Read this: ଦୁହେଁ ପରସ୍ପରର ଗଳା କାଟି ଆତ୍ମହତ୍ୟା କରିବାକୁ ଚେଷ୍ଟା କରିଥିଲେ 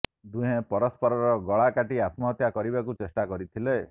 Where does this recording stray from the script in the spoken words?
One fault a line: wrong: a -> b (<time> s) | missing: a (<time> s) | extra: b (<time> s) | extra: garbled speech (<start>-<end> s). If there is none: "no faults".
no faults